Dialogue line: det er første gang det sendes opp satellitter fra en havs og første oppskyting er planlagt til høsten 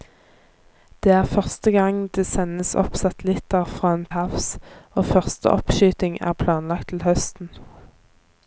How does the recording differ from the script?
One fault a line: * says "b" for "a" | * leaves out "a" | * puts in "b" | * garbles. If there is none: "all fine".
all fine